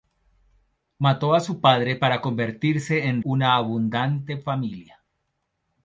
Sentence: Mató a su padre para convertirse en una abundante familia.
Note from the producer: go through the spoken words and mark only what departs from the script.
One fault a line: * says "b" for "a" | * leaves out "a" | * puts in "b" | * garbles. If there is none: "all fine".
all fine